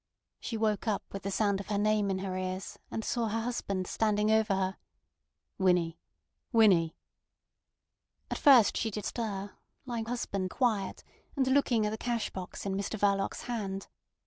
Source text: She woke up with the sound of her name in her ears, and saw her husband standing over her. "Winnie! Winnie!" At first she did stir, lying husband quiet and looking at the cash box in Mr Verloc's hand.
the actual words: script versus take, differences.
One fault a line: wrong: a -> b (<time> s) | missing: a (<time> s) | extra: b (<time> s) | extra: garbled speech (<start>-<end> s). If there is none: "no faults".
no faults